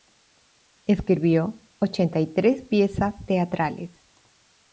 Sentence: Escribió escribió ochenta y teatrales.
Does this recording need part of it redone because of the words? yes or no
yes